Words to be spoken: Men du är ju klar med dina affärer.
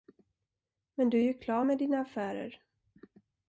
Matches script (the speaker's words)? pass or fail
pass